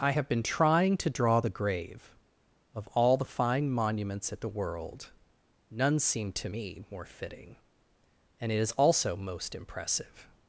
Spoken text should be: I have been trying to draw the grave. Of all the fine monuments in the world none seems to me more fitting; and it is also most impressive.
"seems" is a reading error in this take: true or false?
true